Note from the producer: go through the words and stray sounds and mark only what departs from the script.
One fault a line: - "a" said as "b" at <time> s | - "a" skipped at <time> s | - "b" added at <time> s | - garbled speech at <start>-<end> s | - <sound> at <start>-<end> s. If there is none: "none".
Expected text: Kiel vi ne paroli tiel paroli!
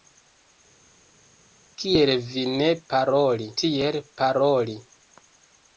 none